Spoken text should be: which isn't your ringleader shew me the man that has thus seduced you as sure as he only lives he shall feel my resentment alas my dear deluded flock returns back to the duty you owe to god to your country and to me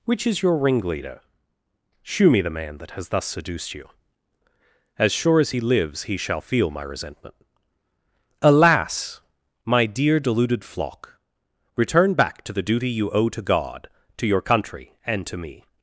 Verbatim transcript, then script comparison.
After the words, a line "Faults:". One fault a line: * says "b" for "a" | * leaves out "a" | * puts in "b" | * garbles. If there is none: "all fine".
which is your ringleader shew me the man that has thus seduced you as sure as he lives he shall feel my resentment alas my dear deluded flock return back to the duty you owe to god to your country and to me
Faults:
* says "is" for "isn't"
* leaves out "only"
* says "return" for "returns"